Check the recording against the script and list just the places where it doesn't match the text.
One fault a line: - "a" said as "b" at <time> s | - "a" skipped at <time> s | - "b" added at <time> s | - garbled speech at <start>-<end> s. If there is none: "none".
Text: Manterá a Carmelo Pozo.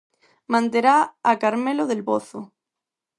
- "Del" added at 1.9 s